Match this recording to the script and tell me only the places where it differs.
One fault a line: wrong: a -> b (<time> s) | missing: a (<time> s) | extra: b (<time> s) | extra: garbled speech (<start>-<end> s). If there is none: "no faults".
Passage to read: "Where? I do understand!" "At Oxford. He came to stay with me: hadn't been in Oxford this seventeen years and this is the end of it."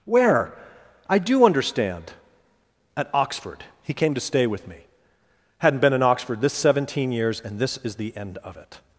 no faults